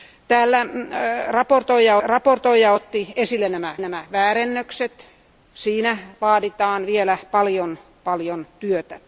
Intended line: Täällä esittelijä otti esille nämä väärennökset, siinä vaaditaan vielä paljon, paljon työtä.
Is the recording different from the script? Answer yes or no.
yes